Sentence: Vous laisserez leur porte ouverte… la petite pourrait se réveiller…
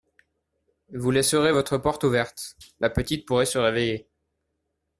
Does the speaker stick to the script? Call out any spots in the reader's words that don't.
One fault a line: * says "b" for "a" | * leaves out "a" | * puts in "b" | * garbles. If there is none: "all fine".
* says "votre" for "leur"